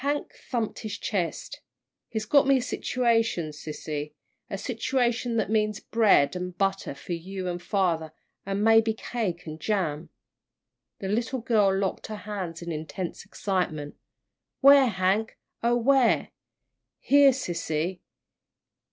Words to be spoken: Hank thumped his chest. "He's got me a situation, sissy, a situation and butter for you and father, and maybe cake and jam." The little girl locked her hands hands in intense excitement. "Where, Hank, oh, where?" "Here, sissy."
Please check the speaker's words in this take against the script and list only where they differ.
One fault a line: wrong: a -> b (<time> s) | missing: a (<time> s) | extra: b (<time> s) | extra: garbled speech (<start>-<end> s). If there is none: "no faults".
extra: that means bread (5.4 s)
missing: hands (12.6 s)